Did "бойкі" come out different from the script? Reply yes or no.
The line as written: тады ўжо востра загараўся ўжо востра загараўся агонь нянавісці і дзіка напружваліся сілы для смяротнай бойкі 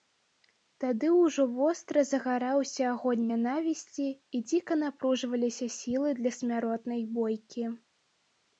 no